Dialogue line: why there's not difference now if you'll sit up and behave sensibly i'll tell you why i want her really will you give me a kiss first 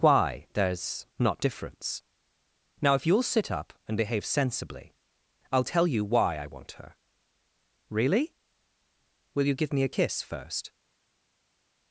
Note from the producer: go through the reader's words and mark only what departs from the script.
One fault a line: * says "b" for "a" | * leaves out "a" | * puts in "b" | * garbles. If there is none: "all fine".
all fine